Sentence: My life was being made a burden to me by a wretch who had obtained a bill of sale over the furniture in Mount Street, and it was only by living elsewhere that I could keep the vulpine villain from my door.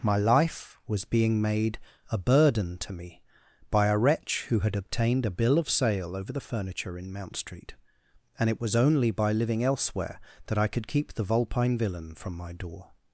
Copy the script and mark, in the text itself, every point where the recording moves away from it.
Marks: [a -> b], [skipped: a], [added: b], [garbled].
My life was being made a burden to me by a wretch who had obtained a bill of sale over the furniture in Mount Street, and it was only by living elsewhere that I could keep the vulpine villain from my door.